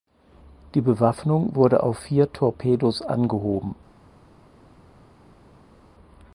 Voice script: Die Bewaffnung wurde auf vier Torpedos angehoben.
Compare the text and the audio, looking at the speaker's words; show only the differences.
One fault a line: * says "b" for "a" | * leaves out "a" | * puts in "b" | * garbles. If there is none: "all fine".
all fine